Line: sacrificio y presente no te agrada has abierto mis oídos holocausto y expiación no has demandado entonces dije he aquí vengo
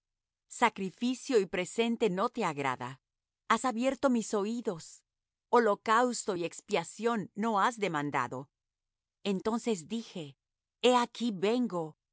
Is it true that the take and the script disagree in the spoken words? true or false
false